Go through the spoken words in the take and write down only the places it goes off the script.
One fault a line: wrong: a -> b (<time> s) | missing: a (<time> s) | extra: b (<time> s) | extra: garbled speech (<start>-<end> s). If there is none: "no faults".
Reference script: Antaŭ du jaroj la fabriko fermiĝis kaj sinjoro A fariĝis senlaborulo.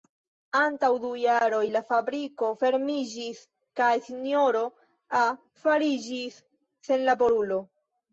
no faults